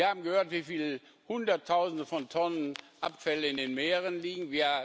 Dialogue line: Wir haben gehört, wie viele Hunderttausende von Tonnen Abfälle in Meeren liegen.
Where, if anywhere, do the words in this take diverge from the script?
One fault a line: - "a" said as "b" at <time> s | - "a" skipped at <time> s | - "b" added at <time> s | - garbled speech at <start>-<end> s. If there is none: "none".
- "den" added at 3.6 s